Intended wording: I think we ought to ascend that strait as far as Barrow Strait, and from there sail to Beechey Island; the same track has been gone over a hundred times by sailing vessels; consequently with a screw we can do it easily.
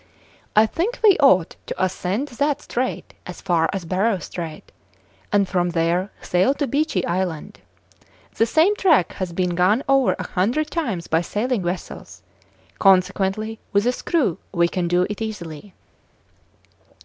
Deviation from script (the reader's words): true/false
false